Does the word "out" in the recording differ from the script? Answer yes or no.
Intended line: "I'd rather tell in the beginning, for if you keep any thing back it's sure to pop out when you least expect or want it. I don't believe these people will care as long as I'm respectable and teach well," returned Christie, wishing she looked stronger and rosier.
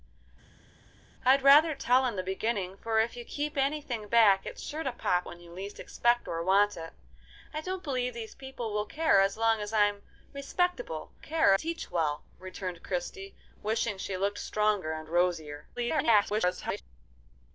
yes